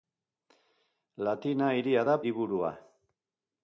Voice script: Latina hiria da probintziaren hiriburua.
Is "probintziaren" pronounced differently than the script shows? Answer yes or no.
yes